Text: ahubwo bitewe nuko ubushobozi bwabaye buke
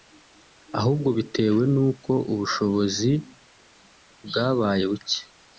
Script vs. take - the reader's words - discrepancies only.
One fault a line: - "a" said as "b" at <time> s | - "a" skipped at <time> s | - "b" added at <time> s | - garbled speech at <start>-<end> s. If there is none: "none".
none